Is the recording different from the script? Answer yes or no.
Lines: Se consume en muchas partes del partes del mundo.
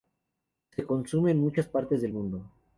yes